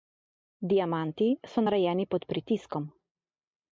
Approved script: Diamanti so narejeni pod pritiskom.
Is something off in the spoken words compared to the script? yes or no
no